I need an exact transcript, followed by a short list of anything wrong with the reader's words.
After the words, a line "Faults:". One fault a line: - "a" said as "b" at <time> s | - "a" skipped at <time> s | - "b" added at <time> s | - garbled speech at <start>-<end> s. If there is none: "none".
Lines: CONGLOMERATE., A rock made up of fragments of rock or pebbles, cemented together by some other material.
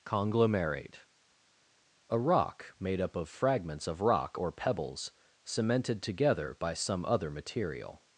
CONGLOMERATE., A rock made up of fragments of rock or pebbles, cemented together by some other material.
Faults:
none